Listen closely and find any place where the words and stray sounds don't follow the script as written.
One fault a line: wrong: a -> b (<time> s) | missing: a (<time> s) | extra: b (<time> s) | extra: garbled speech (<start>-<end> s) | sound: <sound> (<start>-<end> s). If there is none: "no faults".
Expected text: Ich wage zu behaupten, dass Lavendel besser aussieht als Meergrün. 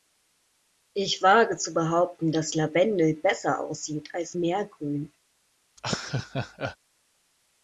sound: laugh (5.8-6.8 s)